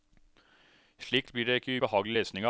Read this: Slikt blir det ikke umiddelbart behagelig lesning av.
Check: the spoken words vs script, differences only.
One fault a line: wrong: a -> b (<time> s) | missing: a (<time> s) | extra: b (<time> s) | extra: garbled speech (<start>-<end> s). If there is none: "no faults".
missing: umiddelbart (1.8 s)